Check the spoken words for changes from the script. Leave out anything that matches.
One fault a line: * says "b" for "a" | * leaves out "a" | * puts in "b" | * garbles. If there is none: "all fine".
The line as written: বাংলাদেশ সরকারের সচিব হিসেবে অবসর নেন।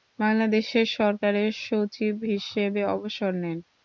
all fine